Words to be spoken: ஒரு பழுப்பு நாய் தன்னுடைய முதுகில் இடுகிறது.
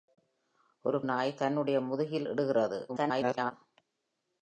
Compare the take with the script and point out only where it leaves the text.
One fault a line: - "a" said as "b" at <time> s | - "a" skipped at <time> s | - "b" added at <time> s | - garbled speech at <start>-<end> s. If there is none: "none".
- "பழுப்பு" skipped at 1.0 s
- garbled speech at 2.9-3.5 s